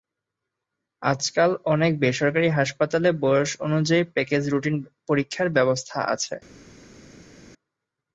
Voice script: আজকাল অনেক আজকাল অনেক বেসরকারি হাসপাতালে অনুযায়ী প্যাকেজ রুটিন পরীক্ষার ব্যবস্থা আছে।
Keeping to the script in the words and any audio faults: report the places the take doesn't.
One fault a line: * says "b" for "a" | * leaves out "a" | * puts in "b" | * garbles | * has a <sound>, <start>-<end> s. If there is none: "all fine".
* leaves out "আজকাল অনেক"
* puts in "বয়স"